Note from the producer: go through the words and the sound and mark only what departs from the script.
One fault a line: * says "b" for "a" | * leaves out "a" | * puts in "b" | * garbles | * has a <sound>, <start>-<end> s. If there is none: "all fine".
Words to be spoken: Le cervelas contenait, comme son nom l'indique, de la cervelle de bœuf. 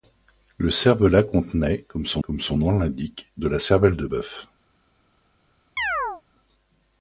* puts in "comme son"
* has a chirp, 5.8-6.2 s